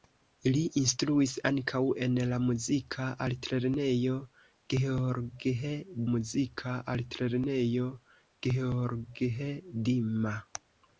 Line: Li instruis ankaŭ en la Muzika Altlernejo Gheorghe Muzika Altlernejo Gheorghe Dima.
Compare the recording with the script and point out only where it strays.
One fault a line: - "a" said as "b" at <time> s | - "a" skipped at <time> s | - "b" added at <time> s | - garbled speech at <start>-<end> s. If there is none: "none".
none